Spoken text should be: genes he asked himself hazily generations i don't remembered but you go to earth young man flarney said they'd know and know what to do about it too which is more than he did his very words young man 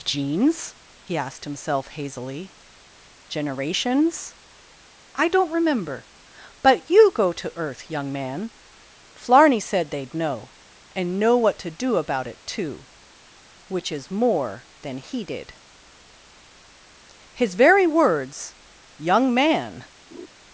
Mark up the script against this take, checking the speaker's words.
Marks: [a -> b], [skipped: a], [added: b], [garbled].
genes he asked himself hazily generations i don't [remembered -> remember] but you go to earth young man flarney said they'd know and know what to do about it too which is more than he did his very words young man